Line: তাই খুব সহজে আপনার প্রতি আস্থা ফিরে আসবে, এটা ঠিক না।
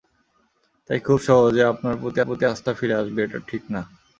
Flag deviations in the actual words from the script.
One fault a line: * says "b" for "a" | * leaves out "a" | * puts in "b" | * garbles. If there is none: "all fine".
* puts in "প্রতি"